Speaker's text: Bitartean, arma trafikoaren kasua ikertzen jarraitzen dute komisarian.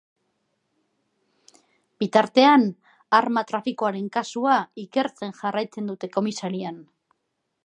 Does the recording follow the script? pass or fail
pass